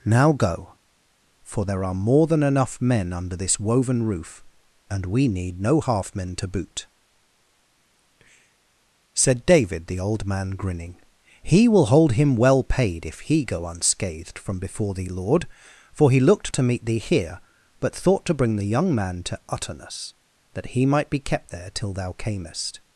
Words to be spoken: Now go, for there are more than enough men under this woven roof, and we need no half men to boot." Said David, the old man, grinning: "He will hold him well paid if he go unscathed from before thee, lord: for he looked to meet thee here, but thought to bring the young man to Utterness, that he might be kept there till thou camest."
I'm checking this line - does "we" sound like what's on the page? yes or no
yes